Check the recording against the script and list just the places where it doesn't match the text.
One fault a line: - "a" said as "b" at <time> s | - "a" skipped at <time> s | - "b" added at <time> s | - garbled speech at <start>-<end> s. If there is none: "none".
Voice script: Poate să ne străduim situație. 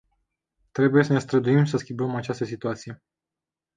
- "Poate" said as "Trebuie" at 0.7 s
- "să schimbăm această" added at 1.6 s